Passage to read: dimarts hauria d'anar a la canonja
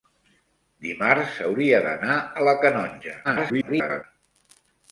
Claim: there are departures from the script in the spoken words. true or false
true